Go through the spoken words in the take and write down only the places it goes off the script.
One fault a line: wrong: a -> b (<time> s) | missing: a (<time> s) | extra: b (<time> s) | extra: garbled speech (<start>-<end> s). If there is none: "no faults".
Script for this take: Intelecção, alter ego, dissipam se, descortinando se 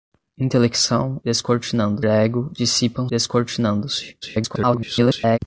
wrong: alter -> descortinando (1.2 s)
missing: se (3.1 s)
extra: garbled speech (4.2-5.4 s)